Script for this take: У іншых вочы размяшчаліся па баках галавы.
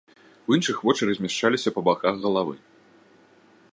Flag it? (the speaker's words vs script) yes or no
no